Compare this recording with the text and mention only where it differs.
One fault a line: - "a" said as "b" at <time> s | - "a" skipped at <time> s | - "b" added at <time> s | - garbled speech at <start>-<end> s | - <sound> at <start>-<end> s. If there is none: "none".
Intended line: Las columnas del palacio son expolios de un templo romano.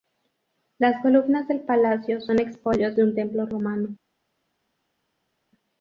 none